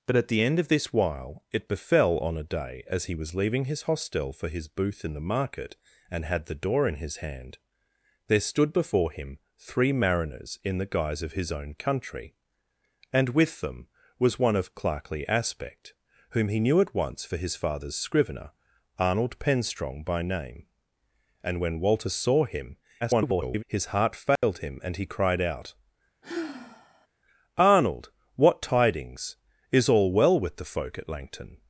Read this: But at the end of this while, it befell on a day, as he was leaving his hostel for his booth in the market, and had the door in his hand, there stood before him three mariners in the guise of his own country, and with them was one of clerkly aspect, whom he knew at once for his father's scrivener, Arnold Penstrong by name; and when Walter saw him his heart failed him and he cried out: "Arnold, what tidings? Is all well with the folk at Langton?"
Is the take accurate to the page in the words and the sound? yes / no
no